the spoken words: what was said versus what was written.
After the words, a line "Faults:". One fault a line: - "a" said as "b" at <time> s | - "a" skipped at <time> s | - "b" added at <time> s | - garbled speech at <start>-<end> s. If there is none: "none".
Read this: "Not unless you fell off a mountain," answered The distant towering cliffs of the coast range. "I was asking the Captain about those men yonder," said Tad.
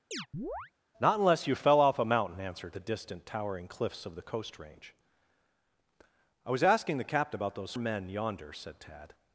"Not unless you fell off a mountain," answered The distant towering cliffs of the coast range. "I was asking the Captain about those men yonder," said Tad.
Faults:
none